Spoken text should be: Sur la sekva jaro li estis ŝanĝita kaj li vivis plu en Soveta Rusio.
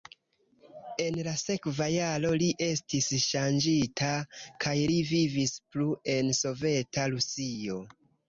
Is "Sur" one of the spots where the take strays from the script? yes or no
yes